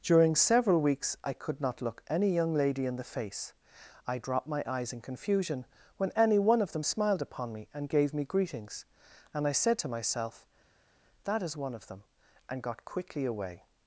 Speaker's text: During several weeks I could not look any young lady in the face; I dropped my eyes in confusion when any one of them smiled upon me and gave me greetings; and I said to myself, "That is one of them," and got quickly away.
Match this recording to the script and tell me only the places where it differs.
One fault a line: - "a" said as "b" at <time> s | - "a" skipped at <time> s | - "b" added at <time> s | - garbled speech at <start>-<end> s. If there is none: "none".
none